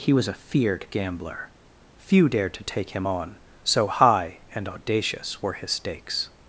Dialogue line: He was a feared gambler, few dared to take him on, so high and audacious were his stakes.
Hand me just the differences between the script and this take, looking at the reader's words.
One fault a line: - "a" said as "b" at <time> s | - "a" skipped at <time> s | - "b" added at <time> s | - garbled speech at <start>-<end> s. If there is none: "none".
none